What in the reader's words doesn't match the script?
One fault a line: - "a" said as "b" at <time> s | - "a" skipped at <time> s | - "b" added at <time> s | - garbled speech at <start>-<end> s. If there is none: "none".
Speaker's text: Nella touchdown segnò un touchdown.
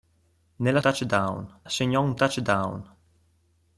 none